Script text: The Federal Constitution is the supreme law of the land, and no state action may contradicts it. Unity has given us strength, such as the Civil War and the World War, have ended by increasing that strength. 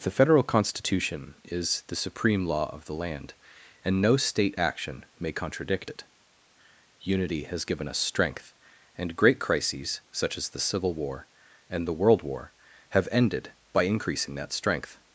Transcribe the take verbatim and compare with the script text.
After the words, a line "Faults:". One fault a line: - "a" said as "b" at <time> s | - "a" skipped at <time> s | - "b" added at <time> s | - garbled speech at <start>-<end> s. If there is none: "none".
The Federal Constitution is the supreme law of the land, and no state action may contradict it. Unity has given us strength, and great crises, such as the Civil War and the World War, have ended by increasing that strength.
Faults:
- "contradicts" said as "contradict" at 5.3 s
- "and great crises" added at 8.9 s